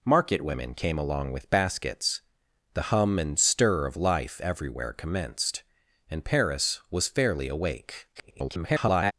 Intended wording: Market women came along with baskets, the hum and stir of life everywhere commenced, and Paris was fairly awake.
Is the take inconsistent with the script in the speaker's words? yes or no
yes